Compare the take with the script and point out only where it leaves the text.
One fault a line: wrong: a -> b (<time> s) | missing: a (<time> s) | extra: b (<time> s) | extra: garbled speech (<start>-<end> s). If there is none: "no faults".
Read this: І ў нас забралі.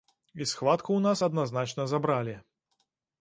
extra: схватку (0.5 s)
extra: адназначна (1.3 s)